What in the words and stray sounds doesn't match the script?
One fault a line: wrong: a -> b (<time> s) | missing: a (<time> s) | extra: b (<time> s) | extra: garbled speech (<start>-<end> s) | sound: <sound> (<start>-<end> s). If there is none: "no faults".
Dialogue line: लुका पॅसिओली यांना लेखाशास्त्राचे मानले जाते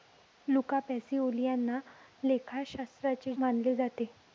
no faults